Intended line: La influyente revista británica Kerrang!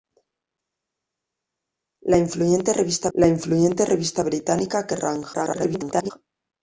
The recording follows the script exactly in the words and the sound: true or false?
false